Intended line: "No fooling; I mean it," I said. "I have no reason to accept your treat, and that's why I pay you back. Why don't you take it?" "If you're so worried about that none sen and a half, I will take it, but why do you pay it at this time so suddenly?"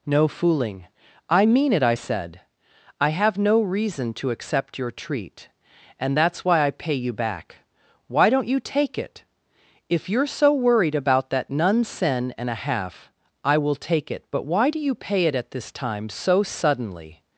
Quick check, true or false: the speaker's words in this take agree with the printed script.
true